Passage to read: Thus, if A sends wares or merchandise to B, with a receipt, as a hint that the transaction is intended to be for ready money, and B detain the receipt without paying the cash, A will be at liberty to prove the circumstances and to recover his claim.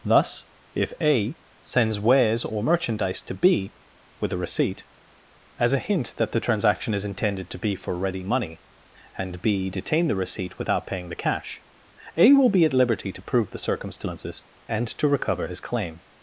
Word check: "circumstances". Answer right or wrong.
right